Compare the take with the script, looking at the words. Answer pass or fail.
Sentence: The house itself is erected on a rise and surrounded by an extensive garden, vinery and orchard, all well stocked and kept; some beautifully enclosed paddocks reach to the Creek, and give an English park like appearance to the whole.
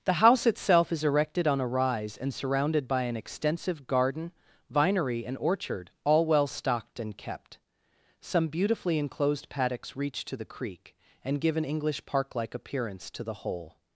pass